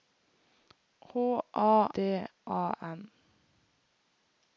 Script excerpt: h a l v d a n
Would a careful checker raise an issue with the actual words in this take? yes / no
yes